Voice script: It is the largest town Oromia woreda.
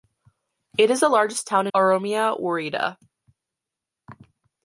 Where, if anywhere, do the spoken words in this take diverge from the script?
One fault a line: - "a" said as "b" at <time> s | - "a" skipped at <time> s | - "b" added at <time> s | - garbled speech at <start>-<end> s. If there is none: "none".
none